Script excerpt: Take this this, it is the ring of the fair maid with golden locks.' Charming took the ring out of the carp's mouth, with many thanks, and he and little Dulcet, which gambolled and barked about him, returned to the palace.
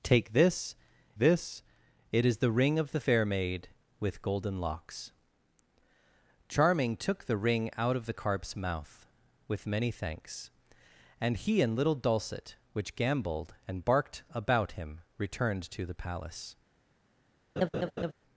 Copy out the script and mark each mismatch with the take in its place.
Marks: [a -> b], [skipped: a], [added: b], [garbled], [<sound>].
Take this this, it is the ring of the fair maid with golden locks.' Charming took the ring out of the carp's mouth, with many thanks, and he and little Dulcet, which gambolled and barked about him, returned to the palace. [laugh]